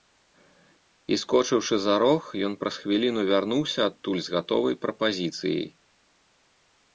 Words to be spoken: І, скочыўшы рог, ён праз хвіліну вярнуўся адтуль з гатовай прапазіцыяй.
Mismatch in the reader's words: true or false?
true